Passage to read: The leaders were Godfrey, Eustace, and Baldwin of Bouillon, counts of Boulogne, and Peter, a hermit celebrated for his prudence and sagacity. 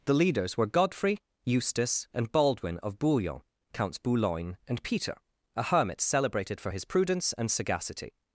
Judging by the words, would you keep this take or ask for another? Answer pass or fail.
fail